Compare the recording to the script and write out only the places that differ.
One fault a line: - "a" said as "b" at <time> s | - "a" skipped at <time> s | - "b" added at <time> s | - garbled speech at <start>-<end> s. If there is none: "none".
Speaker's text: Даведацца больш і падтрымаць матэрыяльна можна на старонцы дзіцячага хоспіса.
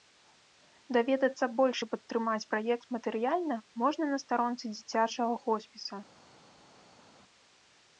- "праект" added at 2.5 s